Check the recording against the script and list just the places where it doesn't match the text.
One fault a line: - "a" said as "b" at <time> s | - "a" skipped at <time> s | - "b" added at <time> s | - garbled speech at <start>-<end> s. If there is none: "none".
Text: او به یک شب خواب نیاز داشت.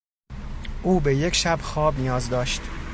none